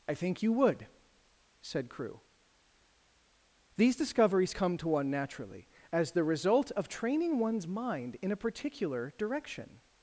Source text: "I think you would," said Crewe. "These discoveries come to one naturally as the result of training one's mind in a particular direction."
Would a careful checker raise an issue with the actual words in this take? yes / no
no